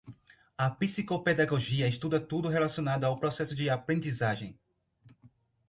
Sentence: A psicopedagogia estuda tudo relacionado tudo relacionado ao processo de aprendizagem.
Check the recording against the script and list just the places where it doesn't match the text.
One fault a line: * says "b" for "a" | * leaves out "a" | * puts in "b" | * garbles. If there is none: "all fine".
* leaves out "tudo relacionado"